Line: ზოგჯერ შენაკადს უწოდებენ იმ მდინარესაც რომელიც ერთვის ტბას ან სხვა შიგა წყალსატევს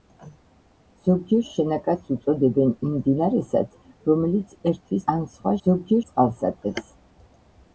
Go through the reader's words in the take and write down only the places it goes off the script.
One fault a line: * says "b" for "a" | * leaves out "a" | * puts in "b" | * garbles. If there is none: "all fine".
* leaves out "ტბას"
* says "ზოგჯერ" for "შიგა"